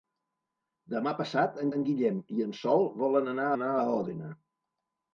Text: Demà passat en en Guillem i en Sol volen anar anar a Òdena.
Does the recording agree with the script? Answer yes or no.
yes